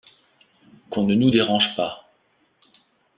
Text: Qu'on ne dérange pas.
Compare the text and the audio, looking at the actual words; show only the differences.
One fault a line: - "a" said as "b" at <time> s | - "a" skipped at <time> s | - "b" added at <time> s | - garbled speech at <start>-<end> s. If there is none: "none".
- "nous" added at 1.1 s